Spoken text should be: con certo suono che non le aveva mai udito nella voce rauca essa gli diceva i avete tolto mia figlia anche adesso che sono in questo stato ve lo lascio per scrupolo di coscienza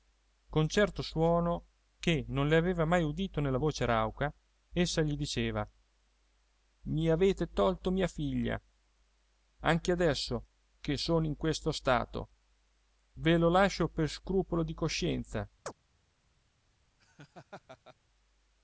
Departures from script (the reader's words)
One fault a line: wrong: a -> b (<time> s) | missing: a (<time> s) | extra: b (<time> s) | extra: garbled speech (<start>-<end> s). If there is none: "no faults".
no faults